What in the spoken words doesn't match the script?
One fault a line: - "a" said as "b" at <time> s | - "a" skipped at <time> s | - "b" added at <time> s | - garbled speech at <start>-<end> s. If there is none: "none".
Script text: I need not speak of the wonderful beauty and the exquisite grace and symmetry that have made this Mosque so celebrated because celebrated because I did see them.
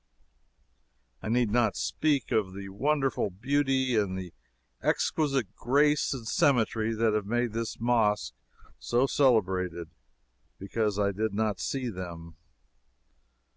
- "celebrated because" skipped at 11.0 s
- "not" added at 11.3 s